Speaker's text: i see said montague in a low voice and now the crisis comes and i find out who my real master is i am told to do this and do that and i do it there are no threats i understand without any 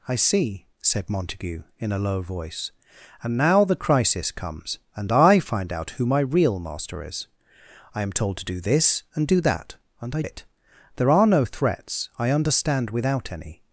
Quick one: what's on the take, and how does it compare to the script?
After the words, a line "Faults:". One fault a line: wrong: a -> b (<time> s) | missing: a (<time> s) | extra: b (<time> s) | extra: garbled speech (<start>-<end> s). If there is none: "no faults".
i see said montague in a low voice and now the crisis comes and i find out who my real master is i am told to do this and do that and i it there are no threats i understand without any
Faults:
missing: do (10.2 s)